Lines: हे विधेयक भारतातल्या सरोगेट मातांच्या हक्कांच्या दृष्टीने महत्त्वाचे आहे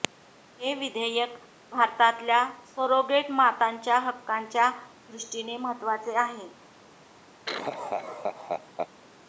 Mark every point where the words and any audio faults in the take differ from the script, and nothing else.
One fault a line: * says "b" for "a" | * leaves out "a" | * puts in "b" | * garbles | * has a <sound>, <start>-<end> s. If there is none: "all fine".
* has a laugh, 7.5-8.9 s